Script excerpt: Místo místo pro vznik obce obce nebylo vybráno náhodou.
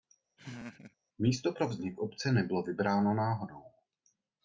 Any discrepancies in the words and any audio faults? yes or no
yes